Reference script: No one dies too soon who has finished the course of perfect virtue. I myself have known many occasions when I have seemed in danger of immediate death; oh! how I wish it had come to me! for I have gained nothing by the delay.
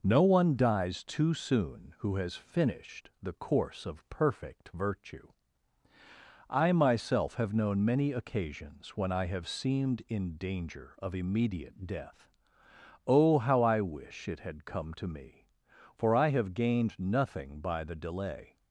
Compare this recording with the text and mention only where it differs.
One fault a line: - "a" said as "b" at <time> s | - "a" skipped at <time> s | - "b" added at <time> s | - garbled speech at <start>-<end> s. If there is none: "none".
none